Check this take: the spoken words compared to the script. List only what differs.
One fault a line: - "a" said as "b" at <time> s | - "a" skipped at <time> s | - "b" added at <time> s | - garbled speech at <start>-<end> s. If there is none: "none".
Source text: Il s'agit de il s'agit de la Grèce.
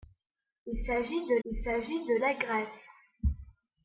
none